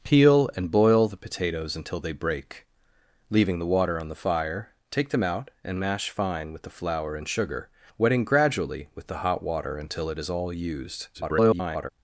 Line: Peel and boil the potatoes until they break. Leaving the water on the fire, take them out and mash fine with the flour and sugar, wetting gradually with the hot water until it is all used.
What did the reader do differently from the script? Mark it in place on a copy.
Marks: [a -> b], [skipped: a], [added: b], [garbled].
Peel and boil the potatoes until they break. Leaving the water on the fire, take them out and mash fine with the flour and sugar, wetting gradually with the hot water until it is all used. [garbled]